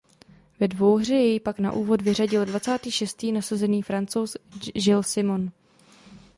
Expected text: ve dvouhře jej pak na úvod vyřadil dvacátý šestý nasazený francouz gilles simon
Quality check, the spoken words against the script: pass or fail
pass